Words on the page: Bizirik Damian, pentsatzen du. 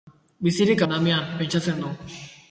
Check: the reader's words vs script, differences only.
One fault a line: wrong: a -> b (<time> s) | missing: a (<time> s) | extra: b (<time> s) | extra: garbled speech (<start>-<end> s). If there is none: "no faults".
no faults